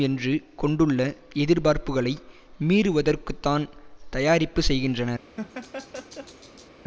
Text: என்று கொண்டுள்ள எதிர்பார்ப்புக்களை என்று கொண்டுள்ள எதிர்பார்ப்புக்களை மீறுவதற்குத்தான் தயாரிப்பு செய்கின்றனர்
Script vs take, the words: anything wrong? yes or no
yes